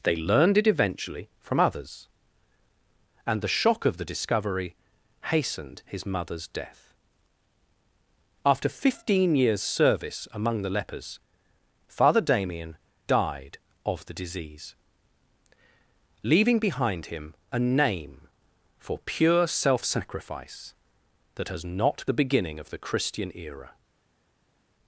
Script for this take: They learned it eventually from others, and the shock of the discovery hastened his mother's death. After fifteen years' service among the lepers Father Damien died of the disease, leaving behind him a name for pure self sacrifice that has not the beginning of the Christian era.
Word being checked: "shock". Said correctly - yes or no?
yes